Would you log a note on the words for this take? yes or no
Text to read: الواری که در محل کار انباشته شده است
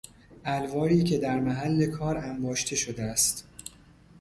no